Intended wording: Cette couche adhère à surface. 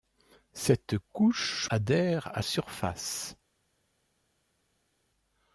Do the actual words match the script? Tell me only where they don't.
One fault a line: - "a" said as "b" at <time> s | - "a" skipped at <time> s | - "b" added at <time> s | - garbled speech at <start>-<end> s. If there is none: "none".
none